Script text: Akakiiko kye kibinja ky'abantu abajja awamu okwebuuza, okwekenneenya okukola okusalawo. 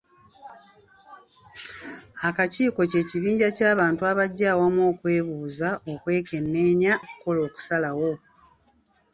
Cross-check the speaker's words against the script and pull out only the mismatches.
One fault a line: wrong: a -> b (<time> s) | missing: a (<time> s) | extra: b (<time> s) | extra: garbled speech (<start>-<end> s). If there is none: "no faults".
no faults